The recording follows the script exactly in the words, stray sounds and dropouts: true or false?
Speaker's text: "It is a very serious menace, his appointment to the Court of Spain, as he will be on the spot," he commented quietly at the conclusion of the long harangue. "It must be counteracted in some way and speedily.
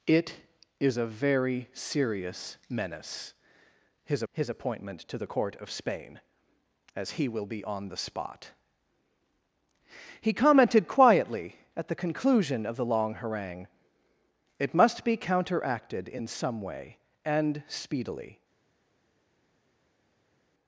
false